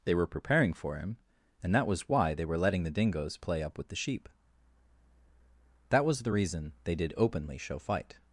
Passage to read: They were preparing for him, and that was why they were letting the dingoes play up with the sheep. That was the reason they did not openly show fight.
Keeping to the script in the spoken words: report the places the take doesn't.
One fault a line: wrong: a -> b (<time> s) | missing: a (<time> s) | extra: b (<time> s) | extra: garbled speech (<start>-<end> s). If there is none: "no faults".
missing: not (7.1 s)